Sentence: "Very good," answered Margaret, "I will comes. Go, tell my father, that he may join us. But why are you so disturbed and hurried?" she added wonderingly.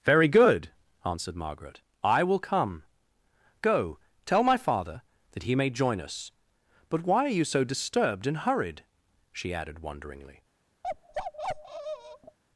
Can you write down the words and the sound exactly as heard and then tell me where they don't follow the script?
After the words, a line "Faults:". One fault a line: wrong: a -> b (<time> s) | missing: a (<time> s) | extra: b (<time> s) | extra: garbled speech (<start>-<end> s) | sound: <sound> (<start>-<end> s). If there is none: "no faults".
"Very good," answered Margaret, "I will come. Go, tell my father, that he may join us. But why are you so disturbed and hurried?" she added wonderingly.
Faults:
wrong: comes -> come (2.4 s)
sound: bark (10.8-12.4 s)